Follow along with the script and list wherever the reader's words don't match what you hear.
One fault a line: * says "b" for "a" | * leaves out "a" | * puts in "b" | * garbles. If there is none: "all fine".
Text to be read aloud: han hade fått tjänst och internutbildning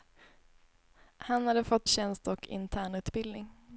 all fine